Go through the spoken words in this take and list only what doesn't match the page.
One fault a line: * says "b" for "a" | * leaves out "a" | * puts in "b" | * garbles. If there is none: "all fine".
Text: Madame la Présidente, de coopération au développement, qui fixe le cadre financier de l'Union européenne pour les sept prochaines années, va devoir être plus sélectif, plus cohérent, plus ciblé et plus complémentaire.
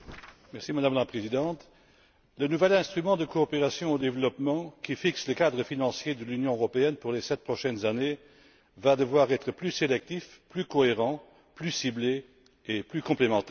* puts in "le nouvel instrument"